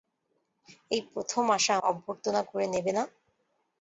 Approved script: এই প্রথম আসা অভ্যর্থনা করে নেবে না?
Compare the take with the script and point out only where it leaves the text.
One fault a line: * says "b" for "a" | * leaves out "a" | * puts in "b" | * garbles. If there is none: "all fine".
all fine